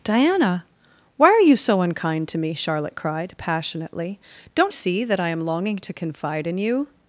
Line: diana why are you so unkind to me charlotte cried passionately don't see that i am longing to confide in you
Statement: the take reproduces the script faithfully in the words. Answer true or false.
true